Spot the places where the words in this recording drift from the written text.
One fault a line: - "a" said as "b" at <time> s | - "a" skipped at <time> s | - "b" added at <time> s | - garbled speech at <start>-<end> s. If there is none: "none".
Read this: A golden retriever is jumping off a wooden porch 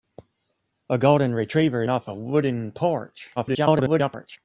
- "is jumping" skipped at 1.8 s
- garbled speech at 3.4-4.4 s